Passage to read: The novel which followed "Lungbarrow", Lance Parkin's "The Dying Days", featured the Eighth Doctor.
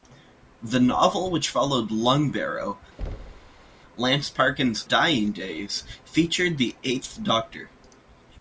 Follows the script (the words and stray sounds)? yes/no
no